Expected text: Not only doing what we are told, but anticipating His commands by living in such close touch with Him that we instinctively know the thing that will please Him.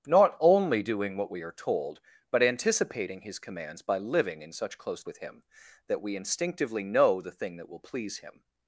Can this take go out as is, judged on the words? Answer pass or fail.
fail